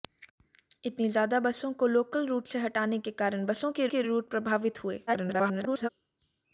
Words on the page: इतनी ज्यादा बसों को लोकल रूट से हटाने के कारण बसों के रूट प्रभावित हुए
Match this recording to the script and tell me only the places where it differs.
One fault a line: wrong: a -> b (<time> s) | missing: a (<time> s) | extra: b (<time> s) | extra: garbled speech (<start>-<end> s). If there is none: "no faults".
extra: के (3.9 s)
extra: garbled speech (5.1-5.9 s)